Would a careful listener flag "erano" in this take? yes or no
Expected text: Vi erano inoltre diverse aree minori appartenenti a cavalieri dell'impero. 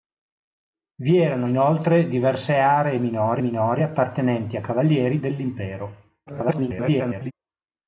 no